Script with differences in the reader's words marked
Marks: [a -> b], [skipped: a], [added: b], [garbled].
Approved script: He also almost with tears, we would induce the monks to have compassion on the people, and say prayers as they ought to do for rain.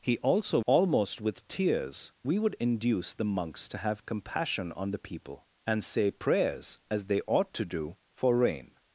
He also almost with tears, we would induce the monks to have compassion on the people, and say prayers as they ought to do for rain.